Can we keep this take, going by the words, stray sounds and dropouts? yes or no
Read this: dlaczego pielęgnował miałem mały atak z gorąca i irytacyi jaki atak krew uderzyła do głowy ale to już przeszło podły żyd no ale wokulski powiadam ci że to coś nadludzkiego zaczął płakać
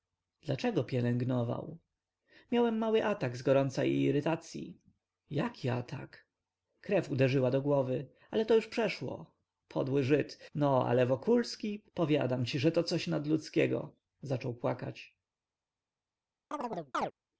no